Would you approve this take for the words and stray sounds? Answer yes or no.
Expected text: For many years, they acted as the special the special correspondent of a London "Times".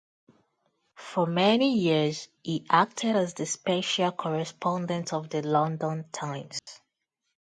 no